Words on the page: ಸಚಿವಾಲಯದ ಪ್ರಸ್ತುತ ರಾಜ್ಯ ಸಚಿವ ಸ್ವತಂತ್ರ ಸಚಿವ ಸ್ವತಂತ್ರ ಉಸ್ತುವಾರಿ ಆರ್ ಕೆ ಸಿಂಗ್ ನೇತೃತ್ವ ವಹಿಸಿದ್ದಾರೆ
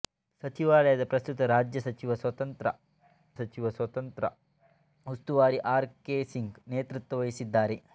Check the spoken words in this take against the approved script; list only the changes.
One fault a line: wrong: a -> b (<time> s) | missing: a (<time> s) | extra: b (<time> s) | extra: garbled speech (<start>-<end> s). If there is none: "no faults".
no faults